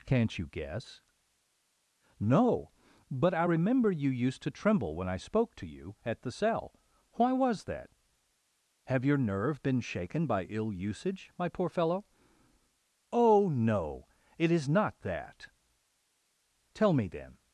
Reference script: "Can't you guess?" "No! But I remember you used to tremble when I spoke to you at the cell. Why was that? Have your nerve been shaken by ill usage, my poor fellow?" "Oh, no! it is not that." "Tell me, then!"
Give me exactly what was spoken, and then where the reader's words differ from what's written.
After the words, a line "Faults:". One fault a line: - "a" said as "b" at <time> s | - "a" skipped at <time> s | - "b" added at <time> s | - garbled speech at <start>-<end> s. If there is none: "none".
"Can't you guess?" "No! But I remember you used to tremble when I spoke to you at the cell. Why was that? Have your nerve been shaken by ill usage, my poor fellow?" "Oh, no! it is not that." "Tell me, then!"
Faults:
none